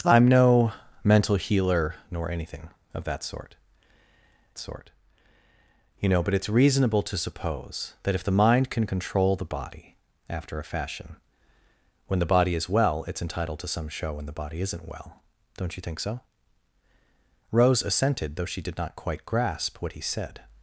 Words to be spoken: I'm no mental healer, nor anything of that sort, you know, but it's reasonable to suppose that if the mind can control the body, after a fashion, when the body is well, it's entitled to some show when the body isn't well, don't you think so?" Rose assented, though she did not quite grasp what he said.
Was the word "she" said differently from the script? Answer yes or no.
no